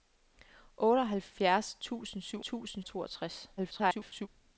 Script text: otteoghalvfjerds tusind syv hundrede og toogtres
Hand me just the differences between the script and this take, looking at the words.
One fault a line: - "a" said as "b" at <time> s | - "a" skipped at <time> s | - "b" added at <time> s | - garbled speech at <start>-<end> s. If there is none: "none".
- "hundrede" said as "tusind" at 2.4 s
- garbled speech at 3.6-4.3 s